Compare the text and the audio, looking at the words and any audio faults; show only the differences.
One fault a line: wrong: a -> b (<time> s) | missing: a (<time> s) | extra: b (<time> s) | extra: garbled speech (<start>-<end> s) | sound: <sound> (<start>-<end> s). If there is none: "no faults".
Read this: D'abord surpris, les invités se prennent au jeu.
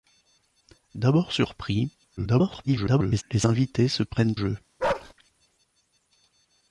extra: garbled speech (2.2-3.2 s)
missing: au (4.4 s)
sound: bark (4.8-5.1 s)